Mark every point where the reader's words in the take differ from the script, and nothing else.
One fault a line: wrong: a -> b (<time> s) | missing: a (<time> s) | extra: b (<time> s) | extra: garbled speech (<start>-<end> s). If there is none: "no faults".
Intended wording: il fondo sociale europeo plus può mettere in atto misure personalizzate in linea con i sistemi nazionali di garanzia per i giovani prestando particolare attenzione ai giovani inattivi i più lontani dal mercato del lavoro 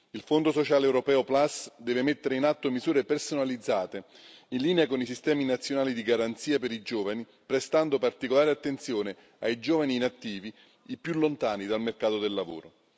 wrong: può -> deve (1.8 s)